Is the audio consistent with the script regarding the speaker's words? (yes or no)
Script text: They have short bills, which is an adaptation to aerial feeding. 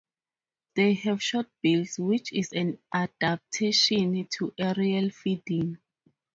yes